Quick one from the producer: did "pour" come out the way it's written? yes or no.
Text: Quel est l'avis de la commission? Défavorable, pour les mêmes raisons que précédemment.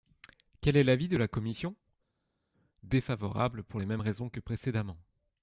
yes